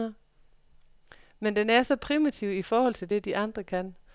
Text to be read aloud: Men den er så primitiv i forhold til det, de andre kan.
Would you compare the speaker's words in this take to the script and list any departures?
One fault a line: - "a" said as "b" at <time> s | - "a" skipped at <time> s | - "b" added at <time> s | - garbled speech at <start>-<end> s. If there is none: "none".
none